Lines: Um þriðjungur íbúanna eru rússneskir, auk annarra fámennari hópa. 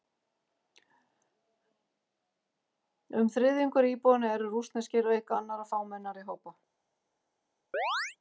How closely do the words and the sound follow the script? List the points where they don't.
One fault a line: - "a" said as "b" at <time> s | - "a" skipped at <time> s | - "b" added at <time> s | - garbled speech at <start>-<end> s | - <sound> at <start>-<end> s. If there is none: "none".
- chirp at 7.7-8.2 s